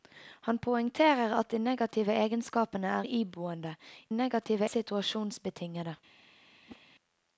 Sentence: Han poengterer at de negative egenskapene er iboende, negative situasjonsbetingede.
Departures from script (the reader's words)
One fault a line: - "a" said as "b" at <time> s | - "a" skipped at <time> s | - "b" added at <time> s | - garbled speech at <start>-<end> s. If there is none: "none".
none